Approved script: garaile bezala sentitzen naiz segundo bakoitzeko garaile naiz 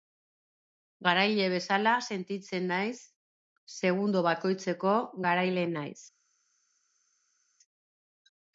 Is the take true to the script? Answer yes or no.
yes